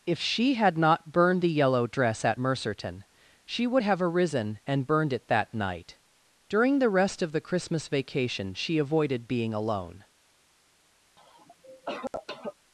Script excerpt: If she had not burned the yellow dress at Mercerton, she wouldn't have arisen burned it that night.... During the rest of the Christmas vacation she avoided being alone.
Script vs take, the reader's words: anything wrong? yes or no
yes